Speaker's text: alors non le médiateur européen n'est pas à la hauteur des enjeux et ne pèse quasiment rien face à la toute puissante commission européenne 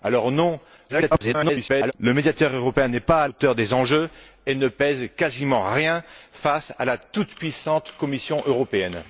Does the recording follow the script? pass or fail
fail